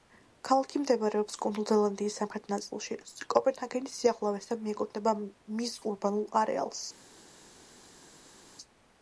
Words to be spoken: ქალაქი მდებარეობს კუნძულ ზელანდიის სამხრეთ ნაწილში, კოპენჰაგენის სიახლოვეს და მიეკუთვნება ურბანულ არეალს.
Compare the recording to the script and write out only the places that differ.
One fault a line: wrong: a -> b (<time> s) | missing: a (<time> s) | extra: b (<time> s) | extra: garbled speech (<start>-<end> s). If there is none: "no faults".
extra: მის (5.6 s)